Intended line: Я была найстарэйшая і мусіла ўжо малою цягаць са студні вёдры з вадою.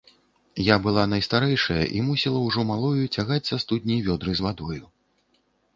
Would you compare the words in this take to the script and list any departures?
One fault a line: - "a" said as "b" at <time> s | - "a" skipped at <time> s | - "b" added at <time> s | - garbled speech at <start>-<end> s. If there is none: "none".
none